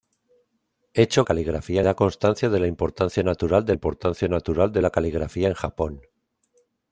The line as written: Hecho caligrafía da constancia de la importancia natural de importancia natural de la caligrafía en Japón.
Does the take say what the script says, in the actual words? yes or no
yes